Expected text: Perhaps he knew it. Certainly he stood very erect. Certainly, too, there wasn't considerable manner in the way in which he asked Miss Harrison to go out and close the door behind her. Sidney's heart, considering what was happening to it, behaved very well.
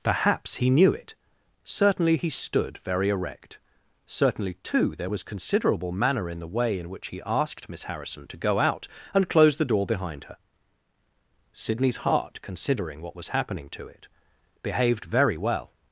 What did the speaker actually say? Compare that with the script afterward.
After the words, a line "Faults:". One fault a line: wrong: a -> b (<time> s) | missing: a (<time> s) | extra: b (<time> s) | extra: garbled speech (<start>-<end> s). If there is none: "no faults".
Perhaps he knew it. Certainly he stood very erect. Certainly, too, there was considerable manner in the way in which he asked Miss Harrison to go out and close the door behind her. Sidney's heart, considering what was happening to it, behaved very well.
Faults:
wrong: wasn't -> was (5.1 s)